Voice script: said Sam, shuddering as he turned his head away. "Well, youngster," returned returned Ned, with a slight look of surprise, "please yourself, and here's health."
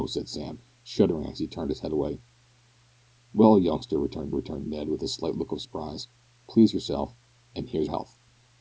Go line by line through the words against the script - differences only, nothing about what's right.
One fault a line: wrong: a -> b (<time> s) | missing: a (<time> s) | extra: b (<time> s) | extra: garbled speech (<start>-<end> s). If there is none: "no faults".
no faults